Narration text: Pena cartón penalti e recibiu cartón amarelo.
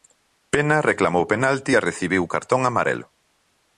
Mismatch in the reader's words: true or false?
true